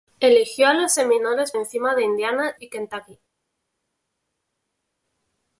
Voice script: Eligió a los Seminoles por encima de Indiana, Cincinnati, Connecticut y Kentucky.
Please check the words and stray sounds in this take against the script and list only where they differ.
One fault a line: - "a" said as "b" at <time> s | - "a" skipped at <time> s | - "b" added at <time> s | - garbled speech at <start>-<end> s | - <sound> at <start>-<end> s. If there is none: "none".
- "por" skipped at 1.5 s
- "Cincinnati Connecticut" skipped at 2.6 s